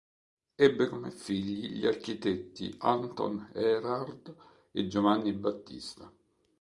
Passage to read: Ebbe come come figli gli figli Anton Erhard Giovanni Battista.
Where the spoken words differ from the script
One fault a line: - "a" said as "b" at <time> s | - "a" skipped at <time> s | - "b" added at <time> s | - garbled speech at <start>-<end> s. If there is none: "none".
- "come" skipped at 1.1 s
- "figli" said as "architetti" at 1.9 s
- "e" added at 4.7 s